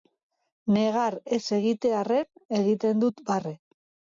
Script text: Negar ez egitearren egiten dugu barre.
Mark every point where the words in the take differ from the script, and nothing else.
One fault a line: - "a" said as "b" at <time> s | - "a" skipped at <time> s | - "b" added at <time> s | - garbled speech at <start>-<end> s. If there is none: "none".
- "dugu" said as "dut" at 3.1 s